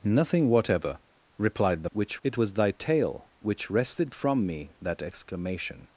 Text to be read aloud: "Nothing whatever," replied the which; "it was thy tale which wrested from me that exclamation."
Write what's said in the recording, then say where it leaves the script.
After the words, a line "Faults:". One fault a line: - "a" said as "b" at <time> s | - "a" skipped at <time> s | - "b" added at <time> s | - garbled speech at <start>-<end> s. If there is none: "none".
"Nothing whatever," replied the which; "it was thy tale which wrested from me that exclamation."
Faults:
none